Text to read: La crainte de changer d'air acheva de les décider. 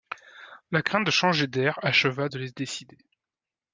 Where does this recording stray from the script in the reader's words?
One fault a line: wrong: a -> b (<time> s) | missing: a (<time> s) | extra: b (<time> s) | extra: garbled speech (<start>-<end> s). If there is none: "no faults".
no faults